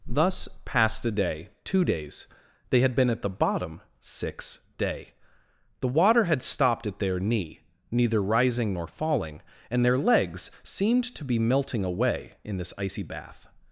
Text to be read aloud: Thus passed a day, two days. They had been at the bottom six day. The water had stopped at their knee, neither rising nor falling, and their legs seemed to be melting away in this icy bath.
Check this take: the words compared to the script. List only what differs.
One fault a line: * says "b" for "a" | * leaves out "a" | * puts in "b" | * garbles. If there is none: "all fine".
all fine